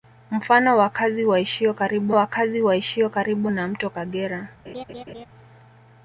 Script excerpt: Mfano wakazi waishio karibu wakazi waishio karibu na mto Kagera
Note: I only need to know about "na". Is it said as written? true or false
true